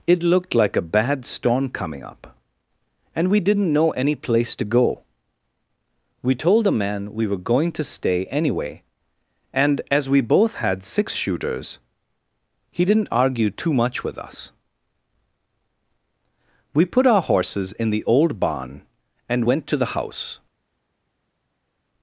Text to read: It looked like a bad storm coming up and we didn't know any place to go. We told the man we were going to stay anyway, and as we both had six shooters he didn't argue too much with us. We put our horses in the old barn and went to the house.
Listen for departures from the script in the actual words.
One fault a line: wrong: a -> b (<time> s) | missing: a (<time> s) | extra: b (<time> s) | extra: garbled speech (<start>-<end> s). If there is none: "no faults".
no faults